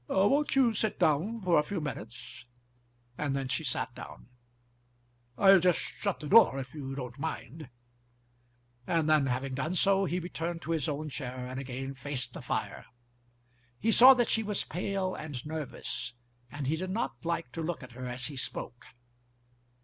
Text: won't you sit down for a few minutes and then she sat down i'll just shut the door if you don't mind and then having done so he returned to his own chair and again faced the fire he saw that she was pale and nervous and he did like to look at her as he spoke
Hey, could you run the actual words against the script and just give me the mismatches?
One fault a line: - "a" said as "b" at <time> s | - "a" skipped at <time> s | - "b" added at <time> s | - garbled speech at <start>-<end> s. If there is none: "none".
- "not" added at 16.9 s